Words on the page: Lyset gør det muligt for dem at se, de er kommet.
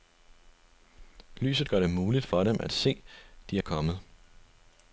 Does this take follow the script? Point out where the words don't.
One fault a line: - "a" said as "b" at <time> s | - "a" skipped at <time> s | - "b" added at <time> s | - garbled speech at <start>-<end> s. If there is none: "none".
none